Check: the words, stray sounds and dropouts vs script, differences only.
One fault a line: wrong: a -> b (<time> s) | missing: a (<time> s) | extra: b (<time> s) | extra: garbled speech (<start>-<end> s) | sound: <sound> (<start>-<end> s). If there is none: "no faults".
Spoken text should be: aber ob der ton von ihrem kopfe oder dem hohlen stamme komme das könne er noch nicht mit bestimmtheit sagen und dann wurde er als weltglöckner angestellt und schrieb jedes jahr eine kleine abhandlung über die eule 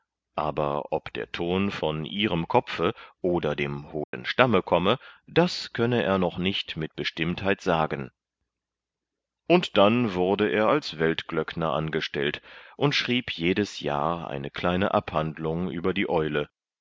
sound: dropout (4.0-4.1 s)